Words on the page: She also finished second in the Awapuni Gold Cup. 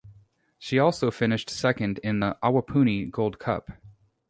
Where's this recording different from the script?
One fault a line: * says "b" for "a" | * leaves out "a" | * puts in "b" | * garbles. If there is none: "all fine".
all fine